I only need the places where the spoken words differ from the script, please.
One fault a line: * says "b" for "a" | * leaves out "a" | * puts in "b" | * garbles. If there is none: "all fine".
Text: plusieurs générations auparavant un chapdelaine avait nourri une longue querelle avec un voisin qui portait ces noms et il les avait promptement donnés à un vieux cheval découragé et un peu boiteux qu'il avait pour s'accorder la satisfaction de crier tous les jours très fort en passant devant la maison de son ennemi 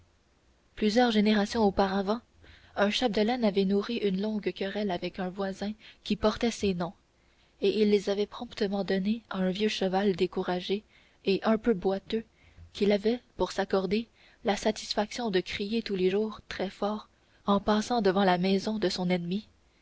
all fine